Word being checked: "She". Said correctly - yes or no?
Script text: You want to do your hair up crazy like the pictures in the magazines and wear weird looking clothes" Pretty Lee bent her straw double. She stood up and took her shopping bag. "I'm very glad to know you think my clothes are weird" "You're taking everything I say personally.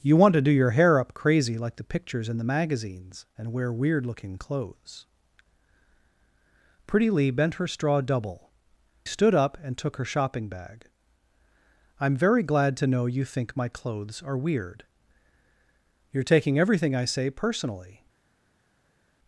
no